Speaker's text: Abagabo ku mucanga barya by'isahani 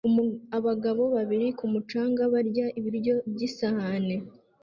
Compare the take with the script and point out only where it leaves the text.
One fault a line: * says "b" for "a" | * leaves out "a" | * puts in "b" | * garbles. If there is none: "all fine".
* puts in "babiri"
* puts in "ibiryo"